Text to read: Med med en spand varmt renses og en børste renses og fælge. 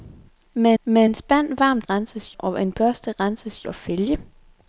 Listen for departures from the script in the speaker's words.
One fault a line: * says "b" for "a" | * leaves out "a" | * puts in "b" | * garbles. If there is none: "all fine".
all fine